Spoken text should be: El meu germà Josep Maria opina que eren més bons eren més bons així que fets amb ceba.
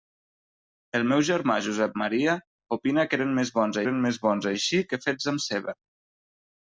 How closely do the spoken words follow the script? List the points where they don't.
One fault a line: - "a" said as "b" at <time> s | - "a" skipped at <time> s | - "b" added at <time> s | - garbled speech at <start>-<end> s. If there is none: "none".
none